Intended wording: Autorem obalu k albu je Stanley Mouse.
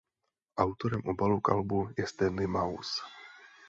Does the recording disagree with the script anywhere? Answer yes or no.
no